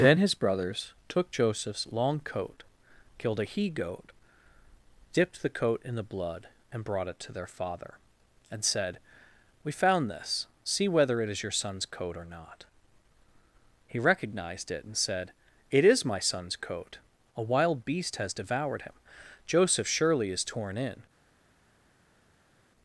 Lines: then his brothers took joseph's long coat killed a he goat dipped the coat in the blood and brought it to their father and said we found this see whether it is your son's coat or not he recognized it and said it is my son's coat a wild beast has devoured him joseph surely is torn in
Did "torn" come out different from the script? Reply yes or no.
no